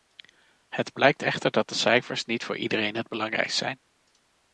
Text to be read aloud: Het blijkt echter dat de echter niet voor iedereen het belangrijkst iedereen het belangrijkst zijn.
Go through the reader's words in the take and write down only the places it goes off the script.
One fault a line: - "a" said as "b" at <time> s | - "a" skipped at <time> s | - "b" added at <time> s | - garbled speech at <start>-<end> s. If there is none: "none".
- "echter" said as "cijfers" at 1.8 s
- "iedereen het belangrijkst" skipped at 3.6 s